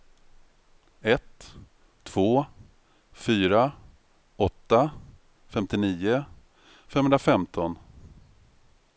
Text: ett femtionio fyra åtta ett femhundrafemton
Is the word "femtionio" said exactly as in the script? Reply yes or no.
no